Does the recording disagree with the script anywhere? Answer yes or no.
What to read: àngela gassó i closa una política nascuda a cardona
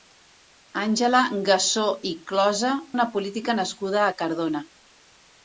no